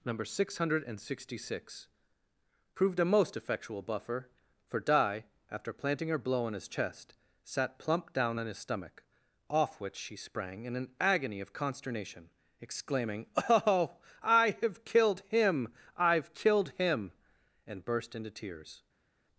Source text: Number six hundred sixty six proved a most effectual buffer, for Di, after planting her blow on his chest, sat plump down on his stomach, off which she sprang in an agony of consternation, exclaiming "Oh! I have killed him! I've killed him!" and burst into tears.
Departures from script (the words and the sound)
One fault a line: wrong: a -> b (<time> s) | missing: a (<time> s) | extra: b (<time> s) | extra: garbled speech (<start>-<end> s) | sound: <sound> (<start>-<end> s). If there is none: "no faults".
no faults